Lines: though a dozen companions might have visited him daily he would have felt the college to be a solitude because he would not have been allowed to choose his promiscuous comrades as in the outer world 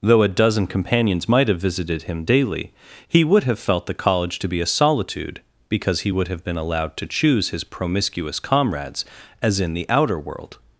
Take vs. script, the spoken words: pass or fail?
fail